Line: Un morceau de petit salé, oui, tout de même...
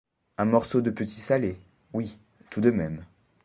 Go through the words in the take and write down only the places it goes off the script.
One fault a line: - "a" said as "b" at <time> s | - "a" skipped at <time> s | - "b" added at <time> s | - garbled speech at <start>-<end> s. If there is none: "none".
none